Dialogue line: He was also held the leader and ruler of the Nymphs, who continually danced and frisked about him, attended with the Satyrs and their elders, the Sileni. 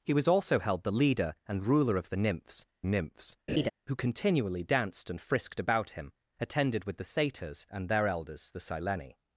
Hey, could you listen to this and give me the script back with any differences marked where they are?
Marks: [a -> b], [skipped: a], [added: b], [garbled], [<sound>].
He was also held the leader and ruler of the Nymphs, [added: Nymphs] [laugh] who continually danced and frisked about him, attended with the Satyrs and their elders, the Sileni.